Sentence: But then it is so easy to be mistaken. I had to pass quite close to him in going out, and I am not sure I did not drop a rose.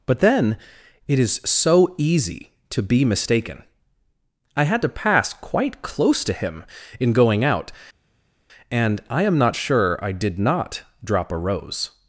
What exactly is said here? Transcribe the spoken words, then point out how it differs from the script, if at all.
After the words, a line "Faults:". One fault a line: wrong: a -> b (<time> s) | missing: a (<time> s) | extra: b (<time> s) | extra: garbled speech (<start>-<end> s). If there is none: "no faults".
But then it is so easy to be mistaken. I had to pass quite close to him in going out, and I am not sure I did not drop a rose.
Faults:
no faults